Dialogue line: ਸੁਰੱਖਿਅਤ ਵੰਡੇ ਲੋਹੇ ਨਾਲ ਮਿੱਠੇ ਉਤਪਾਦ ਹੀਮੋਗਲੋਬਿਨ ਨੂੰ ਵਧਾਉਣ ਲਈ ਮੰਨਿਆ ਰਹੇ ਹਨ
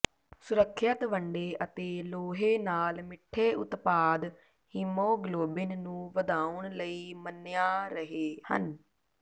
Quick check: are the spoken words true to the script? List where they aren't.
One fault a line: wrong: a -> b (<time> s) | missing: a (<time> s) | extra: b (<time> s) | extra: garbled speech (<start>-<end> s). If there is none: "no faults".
extra: ਅਤੇ (1.6 s)